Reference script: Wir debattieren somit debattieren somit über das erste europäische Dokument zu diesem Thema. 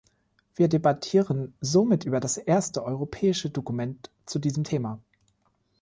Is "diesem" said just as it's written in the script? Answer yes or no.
yes